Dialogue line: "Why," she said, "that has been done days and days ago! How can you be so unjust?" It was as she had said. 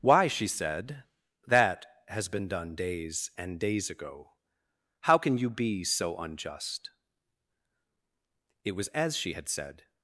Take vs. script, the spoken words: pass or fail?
pass